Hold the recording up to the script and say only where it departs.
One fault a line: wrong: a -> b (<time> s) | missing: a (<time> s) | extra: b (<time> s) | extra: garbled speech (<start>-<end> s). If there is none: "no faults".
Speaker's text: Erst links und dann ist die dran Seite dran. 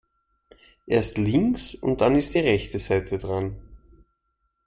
wrong: dran -> rechte (2.4 s)